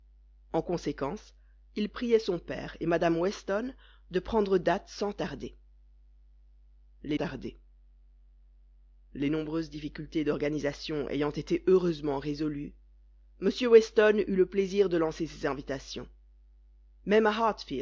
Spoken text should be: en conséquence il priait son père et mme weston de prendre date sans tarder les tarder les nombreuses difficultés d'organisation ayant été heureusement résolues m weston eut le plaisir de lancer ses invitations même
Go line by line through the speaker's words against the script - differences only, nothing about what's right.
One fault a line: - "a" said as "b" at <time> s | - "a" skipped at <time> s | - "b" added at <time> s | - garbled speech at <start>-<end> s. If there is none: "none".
none